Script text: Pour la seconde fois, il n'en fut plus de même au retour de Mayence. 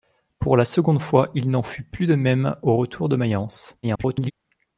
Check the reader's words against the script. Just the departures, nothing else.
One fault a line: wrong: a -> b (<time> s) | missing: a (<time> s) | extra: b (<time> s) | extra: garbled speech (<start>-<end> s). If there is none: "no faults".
extra: garbled speech (3.8-4.3 s)